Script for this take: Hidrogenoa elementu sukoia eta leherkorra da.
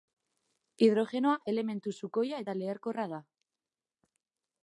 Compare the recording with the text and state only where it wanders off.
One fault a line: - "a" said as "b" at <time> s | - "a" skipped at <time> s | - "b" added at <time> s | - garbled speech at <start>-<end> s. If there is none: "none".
none